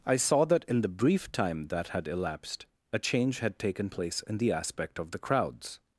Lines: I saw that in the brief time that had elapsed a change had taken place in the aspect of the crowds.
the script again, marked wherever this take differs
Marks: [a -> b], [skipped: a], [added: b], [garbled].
I saw that in the brief time that had elapsed a change had taken place in the aspect of the crowds.